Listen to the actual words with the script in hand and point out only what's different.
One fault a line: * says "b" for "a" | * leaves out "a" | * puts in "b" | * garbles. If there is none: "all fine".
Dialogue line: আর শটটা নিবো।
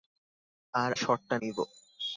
all fine